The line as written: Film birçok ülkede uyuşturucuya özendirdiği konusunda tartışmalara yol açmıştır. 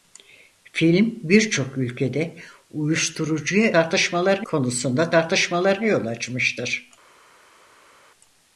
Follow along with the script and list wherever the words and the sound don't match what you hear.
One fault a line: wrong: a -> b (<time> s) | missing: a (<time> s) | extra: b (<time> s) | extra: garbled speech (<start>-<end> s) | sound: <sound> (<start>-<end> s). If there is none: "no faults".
wrong: özendirdiği -> tartışmalara (3.7 s)